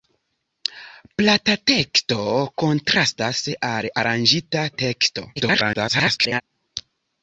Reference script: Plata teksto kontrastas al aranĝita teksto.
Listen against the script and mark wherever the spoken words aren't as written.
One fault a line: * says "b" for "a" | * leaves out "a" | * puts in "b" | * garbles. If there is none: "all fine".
* garbles